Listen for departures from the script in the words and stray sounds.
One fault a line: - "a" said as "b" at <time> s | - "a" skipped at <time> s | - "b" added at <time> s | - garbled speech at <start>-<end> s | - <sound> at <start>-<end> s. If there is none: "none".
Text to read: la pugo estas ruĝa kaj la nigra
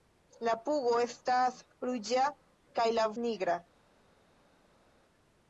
none